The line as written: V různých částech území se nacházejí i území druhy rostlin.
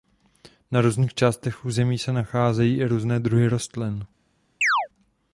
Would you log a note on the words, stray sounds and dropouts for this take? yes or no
yes